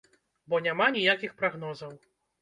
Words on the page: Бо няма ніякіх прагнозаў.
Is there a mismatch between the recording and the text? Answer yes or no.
no